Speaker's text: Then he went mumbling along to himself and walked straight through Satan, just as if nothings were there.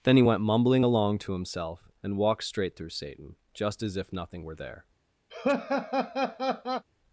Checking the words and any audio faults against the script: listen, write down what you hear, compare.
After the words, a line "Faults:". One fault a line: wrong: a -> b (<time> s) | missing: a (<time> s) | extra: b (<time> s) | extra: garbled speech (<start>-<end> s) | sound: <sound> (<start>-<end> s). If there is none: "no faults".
Then he went mumbling along to himself and walked straight through Satan, just as if nothing were there.
Faults:
wrong: nothings -> nothing (4.1 s)
sound: laugh (5.3-6.8 s)